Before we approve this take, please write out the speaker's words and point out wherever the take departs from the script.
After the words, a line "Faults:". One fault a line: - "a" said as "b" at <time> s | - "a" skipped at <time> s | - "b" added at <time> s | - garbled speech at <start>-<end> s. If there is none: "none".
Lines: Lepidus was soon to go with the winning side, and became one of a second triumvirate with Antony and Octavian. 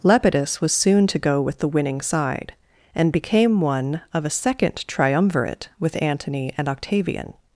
Lepidus was soon to go with the winning side, and became one of a second triumvirate with Antony and Octavian.
Faults:
none